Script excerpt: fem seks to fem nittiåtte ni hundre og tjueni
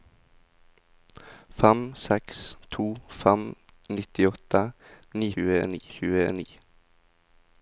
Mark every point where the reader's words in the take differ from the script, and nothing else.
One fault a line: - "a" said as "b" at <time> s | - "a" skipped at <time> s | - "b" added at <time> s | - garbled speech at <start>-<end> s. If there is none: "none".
- "hundre" said as "tjueni" at 5.3 s